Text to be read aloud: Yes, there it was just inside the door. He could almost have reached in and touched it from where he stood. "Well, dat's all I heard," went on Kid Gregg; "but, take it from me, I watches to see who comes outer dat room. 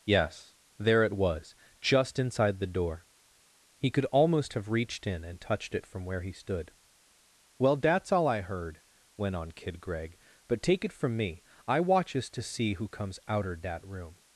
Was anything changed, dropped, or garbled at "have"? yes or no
no